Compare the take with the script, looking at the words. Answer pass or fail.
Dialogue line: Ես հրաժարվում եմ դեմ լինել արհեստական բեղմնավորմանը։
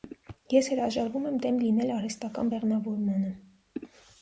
pass